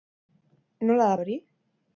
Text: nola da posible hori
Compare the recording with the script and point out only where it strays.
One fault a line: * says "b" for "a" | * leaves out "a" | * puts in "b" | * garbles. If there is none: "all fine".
* leaves out "posible"